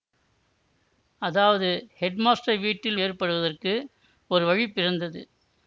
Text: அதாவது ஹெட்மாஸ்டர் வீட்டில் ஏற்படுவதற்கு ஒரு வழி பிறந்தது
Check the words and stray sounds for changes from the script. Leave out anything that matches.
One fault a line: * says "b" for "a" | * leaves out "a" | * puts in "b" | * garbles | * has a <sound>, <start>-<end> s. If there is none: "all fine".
all fine